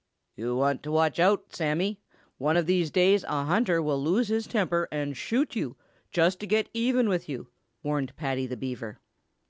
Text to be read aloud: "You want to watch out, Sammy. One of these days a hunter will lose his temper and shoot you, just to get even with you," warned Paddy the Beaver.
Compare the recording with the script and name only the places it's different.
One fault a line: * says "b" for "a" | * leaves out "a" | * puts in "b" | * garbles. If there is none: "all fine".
all fine